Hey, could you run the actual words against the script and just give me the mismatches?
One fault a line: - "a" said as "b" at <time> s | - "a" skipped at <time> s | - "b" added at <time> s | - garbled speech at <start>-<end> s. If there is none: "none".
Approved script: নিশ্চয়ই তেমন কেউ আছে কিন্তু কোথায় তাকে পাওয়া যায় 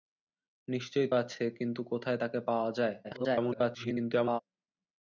- "তেমন কেউ" skipped at 1.1 s
- garbled speech at 3.0-4.4 s